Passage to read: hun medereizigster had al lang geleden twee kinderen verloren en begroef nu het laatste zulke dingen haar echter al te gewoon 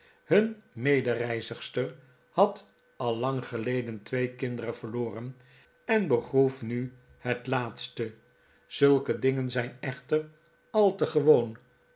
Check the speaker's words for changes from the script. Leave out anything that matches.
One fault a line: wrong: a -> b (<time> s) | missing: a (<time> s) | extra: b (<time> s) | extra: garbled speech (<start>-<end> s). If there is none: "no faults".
wrong: haar -> zijn (9.5 s)